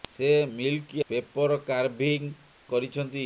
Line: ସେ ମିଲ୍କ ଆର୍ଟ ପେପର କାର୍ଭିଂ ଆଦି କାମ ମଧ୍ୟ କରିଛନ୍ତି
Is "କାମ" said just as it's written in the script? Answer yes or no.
no